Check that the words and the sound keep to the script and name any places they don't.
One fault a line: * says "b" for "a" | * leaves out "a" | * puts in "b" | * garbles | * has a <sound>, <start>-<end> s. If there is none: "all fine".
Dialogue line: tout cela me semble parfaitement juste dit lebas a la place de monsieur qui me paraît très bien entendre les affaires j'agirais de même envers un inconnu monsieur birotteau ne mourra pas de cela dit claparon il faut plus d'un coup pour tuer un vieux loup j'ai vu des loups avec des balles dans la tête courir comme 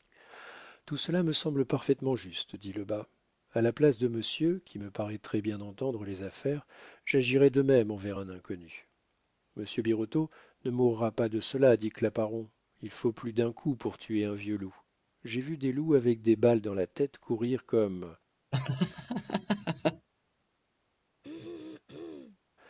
* has a laugh, 18.5-20.1 s
* has a throat clearing, 21.2-22.4 s